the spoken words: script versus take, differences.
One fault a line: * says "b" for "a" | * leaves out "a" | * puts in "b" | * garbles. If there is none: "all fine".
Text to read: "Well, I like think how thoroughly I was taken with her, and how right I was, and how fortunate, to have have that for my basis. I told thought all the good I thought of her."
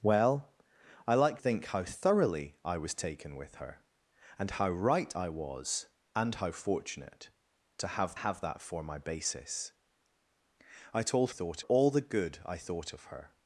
all fine